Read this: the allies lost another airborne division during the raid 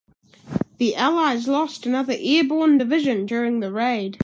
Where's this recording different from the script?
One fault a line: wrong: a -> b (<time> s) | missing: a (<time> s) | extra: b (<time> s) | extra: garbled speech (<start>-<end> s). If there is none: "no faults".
no faults